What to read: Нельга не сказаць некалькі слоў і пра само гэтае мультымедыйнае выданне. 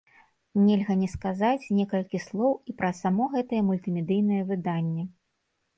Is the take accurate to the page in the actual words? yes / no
yes